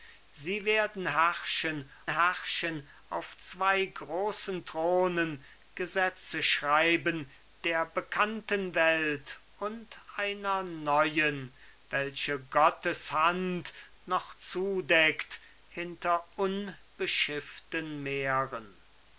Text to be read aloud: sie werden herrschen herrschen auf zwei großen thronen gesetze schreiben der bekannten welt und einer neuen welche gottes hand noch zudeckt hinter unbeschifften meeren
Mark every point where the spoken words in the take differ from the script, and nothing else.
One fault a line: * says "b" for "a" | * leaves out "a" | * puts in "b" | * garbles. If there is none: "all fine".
all fine